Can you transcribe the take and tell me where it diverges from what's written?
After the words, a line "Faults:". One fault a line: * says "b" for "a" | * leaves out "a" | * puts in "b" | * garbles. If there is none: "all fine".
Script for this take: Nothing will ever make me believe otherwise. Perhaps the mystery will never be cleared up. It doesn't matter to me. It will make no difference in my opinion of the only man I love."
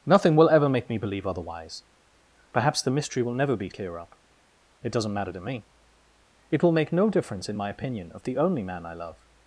Nothing will ever make me believe otherwise. Perhaps the mystery will never be clear up. It doesn't matter to me. It will make no difference in my opinion of the only man I love."
Faults:
* says "clear" for "cleared"